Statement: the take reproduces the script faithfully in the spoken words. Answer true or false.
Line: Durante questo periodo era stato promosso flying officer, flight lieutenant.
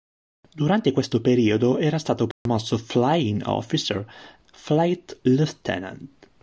true